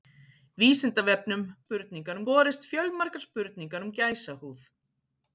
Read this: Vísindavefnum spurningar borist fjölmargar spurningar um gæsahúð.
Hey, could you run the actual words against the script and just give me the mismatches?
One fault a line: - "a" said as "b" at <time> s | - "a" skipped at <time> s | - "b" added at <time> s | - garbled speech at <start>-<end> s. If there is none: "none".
none